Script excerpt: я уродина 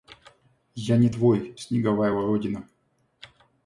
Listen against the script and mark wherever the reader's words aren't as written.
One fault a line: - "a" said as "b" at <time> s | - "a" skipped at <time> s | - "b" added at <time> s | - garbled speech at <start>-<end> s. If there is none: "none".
- "не твой снеговая" added at 1.0 s